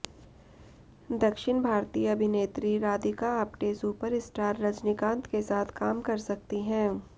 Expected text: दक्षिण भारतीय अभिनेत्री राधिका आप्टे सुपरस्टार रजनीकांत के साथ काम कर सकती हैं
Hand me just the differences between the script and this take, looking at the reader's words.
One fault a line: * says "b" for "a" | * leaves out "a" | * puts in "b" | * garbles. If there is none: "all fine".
all fine